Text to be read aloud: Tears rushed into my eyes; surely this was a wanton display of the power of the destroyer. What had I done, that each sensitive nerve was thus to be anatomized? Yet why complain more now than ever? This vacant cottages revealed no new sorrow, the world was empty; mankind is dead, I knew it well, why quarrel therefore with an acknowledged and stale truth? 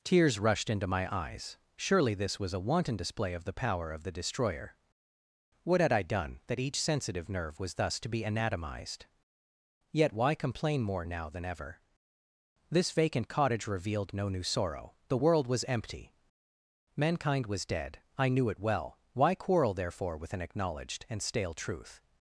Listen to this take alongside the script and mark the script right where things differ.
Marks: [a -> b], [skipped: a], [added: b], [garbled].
Tears rushed into my eyes; surely this was a wanton display of the power of the destroyer. What had I done, that each sensitive nerve was thus to be anatomized? Yet why complain more now than ever? This vacant [cottages -> cottage] revealed no new sorrow, the world was empty; mankind [is -> was] dead, I knew it well, why quarrel therefore with an acknowledged and stale truth?